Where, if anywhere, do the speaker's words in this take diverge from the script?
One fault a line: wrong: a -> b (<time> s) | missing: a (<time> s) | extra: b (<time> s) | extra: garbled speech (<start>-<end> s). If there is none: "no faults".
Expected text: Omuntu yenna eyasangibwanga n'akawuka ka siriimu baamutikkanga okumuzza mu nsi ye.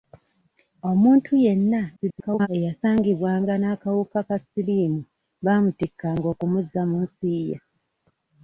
extra: garbled speech (2.0-2.5 s)